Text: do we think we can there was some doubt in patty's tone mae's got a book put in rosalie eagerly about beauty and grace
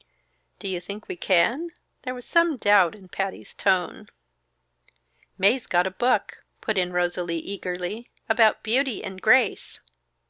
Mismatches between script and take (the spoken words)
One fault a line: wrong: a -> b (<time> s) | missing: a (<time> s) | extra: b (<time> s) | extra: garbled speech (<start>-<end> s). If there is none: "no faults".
wrong: we -> you (0.7 s)